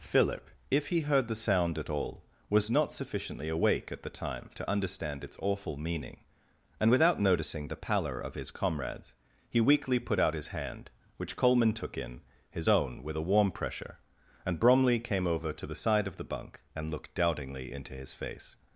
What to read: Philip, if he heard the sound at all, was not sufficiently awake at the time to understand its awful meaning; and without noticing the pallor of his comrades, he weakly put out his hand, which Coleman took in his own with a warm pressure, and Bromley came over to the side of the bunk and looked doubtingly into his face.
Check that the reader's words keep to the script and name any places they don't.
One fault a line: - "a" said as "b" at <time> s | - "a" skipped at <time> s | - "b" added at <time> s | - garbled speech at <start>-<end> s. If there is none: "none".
none